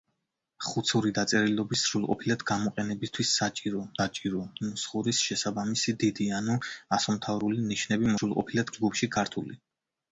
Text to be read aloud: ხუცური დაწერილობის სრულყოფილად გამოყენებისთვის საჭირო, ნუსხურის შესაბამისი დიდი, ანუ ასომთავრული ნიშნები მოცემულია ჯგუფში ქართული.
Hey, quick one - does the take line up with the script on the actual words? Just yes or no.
no